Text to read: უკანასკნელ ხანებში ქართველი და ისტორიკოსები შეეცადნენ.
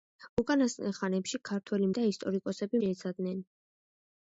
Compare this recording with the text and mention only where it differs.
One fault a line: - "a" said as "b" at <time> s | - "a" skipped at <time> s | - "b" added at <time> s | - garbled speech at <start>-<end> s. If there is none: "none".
none